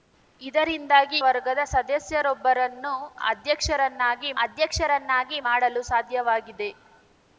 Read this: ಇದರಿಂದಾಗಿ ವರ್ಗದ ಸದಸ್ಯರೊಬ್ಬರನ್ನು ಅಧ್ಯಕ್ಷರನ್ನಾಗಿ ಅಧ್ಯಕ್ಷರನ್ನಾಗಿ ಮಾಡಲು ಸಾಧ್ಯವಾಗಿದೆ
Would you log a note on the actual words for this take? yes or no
no